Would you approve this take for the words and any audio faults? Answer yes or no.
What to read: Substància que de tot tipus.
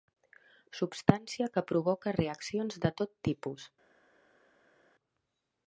no